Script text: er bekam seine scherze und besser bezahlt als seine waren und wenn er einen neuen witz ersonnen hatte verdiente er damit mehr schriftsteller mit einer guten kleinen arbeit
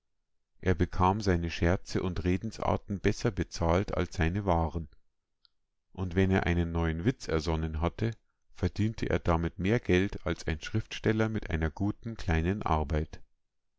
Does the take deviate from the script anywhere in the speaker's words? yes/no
yes